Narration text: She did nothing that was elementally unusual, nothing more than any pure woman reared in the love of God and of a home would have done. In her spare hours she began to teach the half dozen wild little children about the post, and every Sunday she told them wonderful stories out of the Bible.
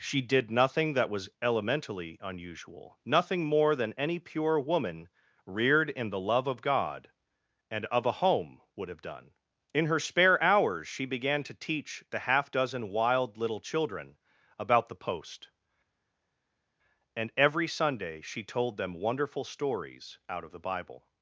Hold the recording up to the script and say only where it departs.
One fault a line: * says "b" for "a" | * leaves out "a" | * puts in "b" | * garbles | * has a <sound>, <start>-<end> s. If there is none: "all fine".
all fine